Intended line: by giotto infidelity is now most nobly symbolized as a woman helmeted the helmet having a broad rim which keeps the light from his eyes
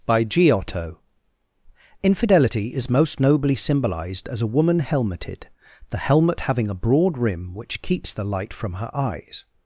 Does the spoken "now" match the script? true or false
false